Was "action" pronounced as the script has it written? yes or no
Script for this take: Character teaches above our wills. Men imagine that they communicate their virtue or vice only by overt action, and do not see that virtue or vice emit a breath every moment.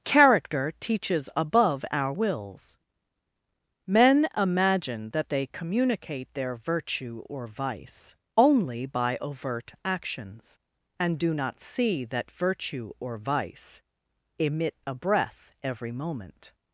no